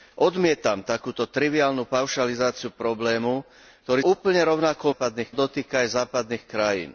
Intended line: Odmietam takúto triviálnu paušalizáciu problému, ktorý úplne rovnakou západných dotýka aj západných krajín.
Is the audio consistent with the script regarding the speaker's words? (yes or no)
yes